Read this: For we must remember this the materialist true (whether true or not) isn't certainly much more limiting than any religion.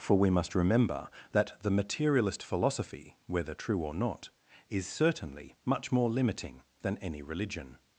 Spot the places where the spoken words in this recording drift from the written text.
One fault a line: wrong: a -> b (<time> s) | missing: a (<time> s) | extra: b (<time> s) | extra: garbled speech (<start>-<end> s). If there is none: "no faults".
wrong: this -> that (1.3 s)
wrong: true -> philosophy (2.4 s)
wrong: isn't -> is (4.7 s)